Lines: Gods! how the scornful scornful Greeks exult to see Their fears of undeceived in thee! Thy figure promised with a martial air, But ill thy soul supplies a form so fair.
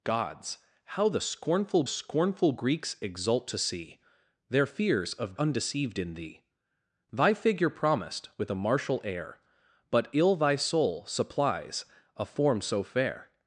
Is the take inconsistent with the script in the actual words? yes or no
no